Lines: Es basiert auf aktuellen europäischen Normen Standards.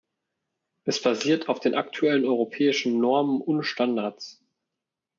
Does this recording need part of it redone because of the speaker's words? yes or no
yes